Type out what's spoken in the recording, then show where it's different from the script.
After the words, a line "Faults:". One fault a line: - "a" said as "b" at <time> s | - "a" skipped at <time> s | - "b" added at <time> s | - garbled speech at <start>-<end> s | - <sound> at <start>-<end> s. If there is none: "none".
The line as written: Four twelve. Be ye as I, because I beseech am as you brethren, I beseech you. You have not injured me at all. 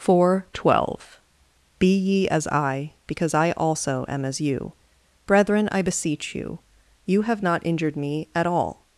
Four twelve. Be ye as I, because I also am as you brethren, I beseech you. You have not injured me at all.
Faults:
- "beseech" said as "also" at 3.5 s